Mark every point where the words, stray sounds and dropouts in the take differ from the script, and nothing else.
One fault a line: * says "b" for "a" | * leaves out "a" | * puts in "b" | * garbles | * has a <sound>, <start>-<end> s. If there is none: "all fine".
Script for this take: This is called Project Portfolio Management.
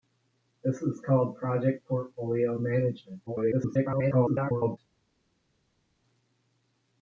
* garbles